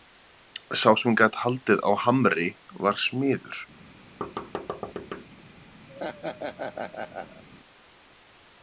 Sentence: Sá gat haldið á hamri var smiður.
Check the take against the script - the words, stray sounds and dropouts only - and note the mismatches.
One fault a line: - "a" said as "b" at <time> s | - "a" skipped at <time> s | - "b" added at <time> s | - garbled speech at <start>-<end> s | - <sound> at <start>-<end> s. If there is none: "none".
- "sem" added at 1.0 s
- thud at 4.2-5.2 s
- laugh at 5.9-7.4 s